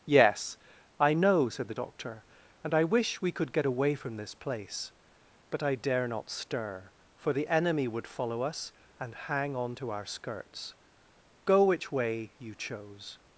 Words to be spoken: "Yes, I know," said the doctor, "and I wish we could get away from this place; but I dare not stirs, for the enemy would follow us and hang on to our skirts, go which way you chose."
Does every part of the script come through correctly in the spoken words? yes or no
no